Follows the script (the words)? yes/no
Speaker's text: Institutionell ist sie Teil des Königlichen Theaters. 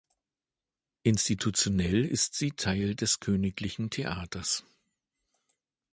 yes